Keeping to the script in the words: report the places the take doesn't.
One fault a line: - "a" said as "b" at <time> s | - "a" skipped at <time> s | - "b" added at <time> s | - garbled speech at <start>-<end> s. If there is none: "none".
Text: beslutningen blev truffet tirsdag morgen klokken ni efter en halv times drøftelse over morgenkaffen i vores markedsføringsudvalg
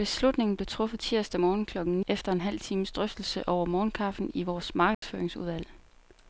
- "ni" skipped at 2.0 s